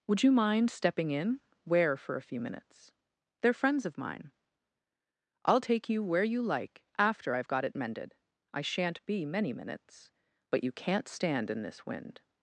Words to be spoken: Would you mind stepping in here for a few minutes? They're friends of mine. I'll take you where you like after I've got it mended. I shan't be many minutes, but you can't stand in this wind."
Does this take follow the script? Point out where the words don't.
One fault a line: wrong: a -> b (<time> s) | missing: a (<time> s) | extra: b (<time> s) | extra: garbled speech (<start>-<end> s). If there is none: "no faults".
wrong: here -> where (1.6 s)